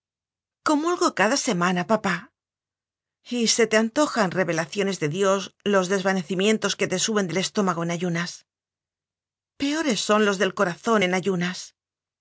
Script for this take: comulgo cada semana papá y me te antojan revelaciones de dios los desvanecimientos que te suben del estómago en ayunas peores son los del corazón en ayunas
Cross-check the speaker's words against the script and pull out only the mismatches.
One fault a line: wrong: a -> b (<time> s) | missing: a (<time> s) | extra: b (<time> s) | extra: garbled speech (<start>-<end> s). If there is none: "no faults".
wrong: me -> se (3.5 s)